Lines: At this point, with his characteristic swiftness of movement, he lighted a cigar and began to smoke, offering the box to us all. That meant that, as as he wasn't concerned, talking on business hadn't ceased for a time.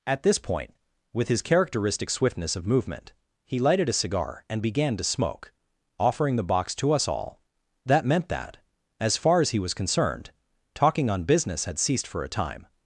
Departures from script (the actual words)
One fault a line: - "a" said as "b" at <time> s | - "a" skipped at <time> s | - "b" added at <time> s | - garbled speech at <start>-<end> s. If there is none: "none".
- "far" added at 9.2 s
- "wasn't" said as "was" at 9.6 s
- "hadn't" said as "had" at 11.7 s